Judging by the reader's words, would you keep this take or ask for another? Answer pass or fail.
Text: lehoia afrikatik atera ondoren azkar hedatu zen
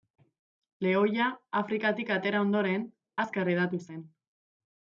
pass